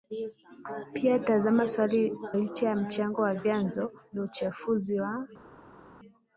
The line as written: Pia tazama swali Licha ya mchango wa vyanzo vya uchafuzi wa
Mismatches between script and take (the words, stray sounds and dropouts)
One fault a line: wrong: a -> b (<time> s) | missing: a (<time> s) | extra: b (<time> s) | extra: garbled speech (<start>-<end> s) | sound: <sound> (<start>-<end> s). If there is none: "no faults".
no faults